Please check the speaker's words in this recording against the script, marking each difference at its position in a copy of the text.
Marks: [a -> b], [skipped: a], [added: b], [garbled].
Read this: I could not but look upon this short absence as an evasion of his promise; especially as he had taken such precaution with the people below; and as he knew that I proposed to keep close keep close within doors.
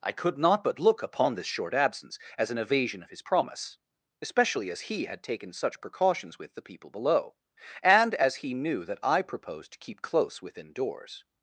I could not but look upon this short absence as an evasion of his promise; especially as he had taken such [precaution -> precautions] with the people below; and as he knew that I proposed to keep close [skipped: keep close] within doors.